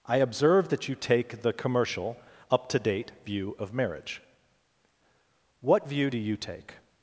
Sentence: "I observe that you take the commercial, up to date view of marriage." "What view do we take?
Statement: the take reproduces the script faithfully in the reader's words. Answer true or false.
false